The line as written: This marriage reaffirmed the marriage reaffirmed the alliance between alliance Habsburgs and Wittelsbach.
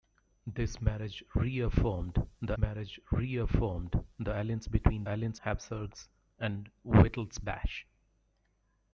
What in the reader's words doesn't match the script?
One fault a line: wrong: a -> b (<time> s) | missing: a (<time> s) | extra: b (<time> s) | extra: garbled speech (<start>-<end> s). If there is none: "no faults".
no faults